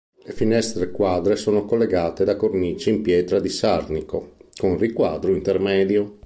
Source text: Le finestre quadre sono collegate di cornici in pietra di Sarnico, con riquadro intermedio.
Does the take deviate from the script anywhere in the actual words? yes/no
yes